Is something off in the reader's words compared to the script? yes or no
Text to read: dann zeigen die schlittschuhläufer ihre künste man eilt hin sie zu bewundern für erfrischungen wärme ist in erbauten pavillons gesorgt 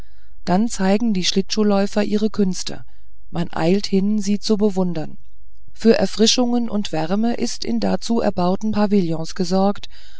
yes